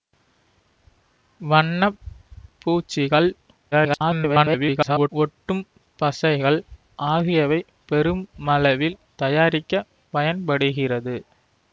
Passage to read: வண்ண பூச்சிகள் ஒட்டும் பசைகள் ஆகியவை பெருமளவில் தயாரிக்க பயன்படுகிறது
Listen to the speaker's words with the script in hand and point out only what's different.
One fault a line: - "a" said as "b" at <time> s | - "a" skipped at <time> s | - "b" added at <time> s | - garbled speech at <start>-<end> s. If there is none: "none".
- garbled speech at 3.7-5.1 s